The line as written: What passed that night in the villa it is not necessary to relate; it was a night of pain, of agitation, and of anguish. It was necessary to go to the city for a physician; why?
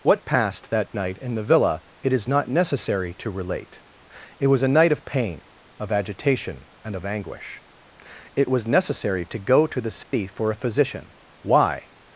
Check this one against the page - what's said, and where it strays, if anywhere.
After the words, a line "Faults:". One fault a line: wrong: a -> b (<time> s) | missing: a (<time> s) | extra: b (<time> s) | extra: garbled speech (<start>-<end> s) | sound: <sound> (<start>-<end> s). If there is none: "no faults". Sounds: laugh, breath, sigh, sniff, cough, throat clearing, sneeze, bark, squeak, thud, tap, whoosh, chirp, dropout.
What passed that night in the villa it is not necessary to relate; it was a night of pain, of agitation, and of anguish. It was necessary to go to the city for a physician; why?
Faults:
sound: dropout (10.0-10.1 s)